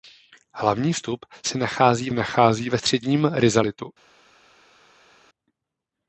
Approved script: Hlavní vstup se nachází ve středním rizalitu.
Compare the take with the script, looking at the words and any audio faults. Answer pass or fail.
fail